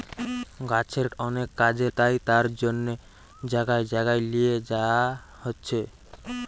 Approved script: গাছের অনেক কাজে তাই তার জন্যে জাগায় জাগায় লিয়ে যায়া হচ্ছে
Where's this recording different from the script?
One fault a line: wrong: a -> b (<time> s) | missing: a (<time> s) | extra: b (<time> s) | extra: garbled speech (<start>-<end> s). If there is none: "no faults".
no faults